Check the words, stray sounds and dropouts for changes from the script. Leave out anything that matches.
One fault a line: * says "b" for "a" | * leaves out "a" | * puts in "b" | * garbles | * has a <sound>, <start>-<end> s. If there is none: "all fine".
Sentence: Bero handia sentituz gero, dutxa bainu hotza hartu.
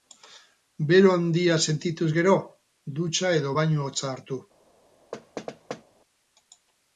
* puts in "edo"
* has a thud, 5.1-5.8 s